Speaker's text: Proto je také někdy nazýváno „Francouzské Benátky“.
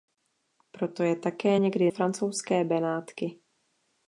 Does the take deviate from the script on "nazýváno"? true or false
true